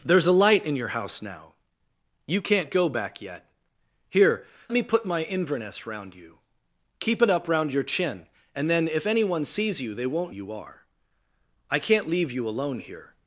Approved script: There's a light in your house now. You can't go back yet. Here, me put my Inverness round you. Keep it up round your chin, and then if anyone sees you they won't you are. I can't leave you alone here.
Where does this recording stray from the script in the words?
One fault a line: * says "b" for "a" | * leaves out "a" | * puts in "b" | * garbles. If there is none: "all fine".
all fine